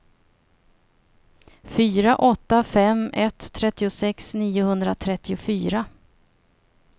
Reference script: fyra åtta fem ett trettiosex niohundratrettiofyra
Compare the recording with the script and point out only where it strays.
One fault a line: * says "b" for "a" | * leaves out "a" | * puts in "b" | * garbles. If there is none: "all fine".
all fine